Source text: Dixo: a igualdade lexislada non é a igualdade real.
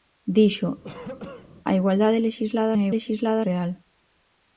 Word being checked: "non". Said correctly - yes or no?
no